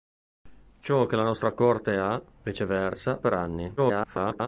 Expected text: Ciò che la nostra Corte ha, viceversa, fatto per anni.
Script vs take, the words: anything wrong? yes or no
yes